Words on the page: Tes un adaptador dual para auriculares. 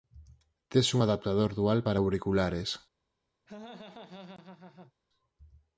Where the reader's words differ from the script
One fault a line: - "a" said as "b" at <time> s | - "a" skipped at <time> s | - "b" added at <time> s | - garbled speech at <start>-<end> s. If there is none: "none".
none